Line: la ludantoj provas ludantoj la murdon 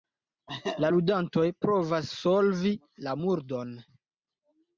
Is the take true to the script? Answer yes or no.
no